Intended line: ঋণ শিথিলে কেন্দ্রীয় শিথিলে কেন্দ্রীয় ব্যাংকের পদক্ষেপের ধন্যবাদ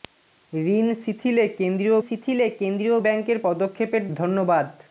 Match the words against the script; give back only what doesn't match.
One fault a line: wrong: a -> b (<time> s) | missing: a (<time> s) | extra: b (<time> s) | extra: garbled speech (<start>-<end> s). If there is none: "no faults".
no faults